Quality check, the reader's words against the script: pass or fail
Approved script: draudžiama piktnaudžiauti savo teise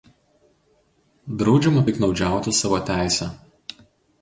pass